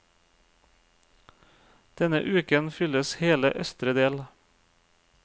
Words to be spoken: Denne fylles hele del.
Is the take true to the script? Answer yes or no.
no